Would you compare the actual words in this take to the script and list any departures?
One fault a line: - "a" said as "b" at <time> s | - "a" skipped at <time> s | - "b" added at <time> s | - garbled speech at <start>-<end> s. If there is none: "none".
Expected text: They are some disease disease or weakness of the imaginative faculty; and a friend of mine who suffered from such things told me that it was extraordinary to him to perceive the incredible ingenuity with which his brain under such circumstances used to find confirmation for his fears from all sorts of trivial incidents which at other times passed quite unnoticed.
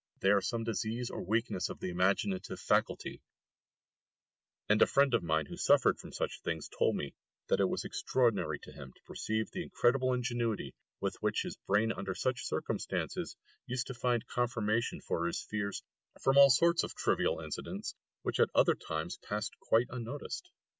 - "disease" skipped at 1.1 s